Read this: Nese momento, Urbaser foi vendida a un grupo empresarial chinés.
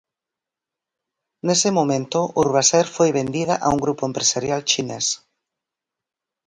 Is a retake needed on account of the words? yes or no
no